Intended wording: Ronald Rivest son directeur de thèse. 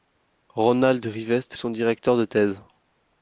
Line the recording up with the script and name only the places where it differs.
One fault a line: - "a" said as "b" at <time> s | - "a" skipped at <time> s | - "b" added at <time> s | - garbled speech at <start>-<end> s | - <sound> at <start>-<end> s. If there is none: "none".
none